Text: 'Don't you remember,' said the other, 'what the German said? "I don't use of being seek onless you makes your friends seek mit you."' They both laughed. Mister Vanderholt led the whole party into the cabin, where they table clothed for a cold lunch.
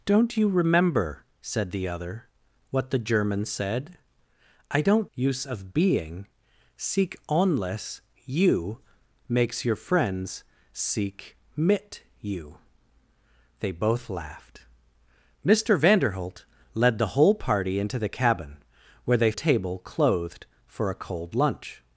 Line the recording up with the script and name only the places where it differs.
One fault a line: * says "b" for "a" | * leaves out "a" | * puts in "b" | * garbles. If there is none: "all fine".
all fine